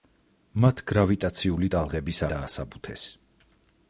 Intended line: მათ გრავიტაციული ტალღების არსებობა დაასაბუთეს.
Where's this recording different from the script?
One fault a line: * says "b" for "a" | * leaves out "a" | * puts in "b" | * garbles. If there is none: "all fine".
* leaves out "არსებობა"